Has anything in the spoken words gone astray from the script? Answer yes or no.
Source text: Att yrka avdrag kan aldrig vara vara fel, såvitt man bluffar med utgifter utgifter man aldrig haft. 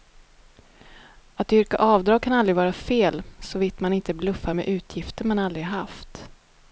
yes